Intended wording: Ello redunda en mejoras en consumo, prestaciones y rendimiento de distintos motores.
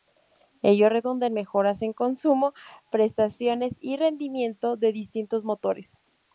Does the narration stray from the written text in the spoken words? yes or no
no